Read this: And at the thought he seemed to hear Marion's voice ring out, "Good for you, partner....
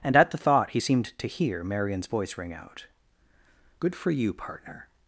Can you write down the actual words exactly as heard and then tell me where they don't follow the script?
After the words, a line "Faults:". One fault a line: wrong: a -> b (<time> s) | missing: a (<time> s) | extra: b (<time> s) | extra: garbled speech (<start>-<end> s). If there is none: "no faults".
And at the thought he seemed to hear Marion's voice ring out, "Good for you, partner....
Faults:
no faults